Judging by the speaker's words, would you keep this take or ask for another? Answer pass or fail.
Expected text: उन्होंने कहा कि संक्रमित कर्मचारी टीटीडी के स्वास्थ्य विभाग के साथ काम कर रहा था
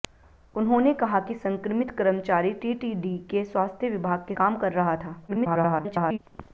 fail